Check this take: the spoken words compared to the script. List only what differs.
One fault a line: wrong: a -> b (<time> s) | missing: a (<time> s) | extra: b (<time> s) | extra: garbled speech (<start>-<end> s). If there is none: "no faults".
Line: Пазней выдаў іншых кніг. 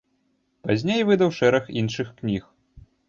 extra: шэраг (1.4 s)